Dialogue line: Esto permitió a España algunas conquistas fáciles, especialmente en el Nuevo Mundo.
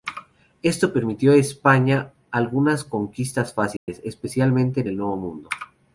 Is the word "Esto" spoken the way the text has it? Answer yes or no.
yes